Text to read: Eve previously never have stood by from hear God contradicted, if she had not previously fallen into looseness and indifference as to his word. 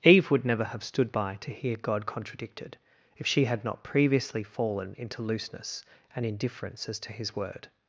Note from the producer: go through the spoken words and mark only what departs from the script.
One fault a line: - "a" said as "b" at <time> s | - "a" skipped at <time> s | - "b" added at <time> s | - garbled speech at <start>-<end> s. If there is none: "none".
- "previously" said as "would" at 0.3 s
- "from" said as "to" at 1.4 s